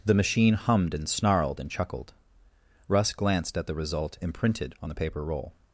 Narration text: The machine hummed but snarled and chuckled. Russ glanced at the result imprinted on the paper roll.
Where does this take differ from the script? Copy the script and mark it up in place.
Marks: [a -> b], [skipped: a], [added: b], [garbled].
The machine hummed [but -> and] snarled and chuckled. Russ glanced at the result imprinted on the paper roll.